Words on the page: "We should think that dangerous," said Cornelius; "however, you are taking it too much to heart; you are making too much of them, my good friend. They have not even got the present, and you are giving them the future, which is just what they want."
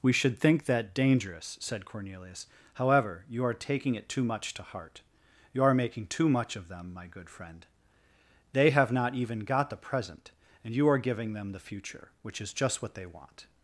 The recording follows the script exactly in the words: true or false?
true